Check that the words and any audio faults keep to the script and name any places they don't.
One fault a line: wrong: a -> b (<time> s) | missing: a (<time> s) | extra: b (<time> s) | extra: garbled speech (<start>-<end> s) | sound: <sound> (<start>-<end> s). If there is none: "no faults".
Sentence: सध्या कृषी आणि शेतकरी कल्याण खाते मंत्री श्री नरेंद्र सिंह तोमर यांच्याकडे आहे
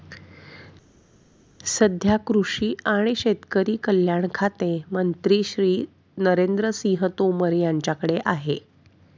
no faults